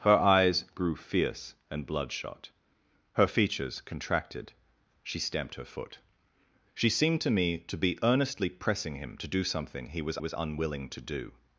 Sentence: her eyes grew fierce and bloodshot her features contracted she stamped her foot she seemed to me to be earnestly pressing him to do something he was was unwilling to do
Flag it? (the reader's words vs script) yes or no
no